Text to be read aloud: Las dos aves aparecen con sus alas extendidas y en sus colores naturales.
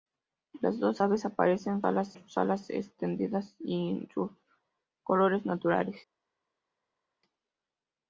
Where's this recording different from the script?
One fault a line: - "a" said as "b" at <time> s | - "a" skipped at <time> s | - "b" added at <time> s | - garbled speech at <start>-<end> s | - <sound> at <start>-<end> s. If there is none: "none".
- "con" said as "alas" at 1.8 s